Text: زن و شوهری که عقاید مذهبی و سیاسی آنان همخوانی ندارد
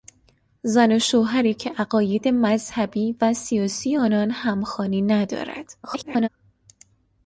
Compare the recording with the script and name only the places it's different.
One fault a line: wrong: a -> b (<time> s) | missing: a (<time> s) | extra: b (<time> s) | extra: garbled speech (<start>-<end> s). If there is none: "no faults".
extra: garbled speech (5.8-6.3 s)